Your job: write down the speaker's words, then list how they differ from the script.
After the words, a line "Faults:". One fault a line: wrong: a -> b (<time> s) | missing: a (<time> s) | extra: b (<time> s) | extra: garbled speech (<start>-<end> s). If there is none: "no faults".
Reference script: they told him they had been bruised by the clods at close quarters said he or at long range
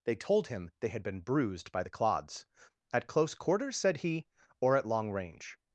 they told him they had been bruised by the clods at close quarters said he or at long range
Faults:
no faults